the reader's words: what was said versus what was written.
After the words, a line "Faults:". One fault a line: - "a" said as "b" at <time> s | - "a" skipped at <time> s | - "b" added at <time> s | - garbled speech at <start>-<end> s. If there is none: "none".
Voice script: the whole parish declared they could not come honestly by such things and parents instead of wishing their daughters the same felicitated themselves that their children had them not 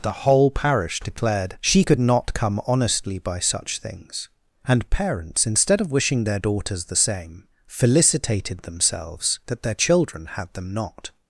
the whole parish declared she could not come honestly by such things and parents instead of wishing their daughters the same felicitated themselves that their children had them not
Faults:
- "they" said as "she" at 1.6 s